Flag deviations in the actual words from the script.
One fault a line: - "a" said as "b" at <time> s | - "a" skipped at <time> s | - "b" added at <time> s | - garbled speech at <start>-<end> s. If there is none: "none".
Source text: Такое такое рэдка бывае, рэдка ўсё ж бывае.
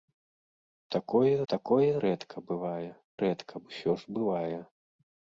none